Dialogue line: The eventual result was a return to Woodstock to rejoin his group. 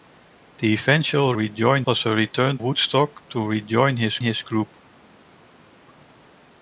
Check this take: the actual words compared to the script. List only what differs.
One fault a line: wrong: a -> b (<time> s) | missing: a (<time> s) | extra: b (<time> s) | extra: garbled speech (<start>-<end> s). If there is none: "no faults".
wrong: result -> rejoin (1.3 s)
missing: to (2.6 s)
extra: his (4.2 s)